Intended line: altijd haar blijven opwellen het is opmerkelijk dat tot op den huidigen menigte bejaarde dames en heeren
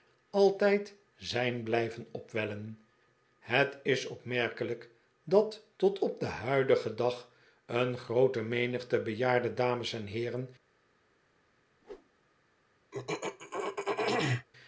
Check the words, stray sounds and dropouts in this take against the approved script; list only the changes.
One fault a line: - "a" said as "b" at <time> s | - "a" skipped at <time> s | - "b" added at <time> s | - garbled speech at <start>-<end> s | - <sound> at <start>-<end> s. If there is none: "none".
- "haar" said as "zijn" at 1.1 s
- "dag een groote" added at 7.0 s
- whoosh at 11.8-12.1 s
- throat clearing at 12.9-14.5 s